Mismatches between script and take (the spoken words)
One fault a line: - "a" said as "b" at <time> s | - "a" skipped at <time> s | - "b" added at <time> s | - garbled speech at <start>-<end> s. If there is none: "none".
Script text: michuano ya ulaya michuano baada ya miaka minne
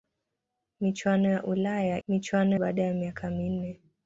none